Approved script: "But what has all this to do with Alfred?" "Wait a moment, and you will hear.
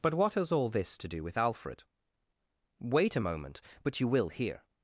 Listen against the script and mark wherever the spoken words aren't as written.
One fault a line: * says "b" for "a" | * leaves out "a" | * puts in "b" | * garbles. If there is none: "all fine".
* says "but" for "and"